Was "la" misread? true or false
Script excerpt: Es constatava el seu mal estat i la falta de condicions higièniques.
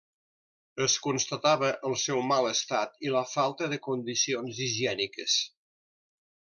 false